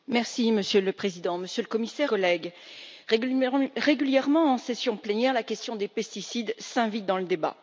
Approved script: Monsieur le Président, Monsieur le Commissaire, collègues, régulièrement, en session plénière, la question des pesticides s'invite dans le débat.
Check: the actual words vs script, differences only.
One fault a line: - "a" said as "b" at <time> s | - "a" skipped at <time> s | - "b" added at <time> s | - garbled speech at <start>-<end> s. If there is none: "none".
none